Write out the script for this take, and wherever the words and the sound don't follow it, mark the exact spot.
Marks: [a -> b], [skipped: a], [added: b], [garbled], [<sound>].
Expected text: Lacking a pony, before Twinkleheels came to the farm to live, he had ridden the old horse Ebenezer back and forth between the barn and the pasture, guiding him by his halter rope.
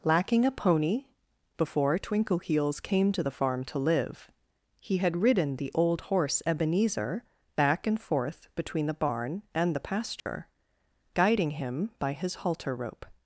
Lacking a pony, before Twinkleheels came to the farm to live, he had ridden the old horse Ebenezer back and forth between the barn and the pasture, [dropout] guiding him by his halter rope.